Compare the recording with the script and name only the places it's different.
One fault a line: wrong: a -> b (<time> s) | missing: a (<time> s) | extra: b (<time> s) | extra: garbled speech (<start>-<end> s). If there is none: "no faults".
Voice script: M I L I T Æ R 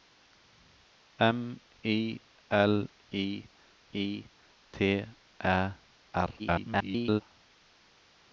extra: I (3.9 s)
extra: garbled speech (6.4-7.2 s)